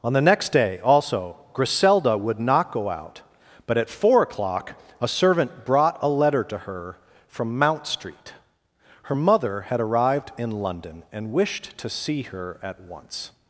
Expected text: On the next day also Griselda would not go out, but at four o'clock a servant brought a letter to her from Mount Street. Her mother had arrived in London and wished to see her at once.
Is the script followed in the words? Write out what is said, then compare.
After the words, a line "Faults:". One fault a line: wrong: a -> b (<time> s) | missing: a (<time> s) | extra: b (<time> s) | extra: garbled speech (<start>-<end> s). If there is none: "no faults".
On the next day also Griselda would not go out, but at four o'clock a servant brought a letter to her from Mount Street. Her mother had arrived in London and wished to see her at once.
Faults:
no faults